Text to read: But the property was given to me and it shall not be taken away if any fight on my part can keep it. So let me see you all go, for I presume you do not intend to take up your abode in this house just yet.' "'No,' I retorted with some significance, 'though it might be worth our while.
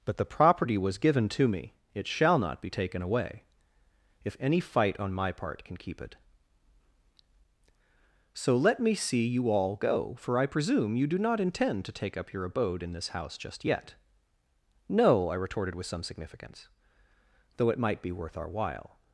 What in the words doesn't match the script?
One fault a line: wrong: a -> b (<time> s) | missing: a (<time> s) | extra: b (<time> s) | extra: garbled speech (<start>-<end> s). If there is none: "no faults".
missing: and (1.7 s)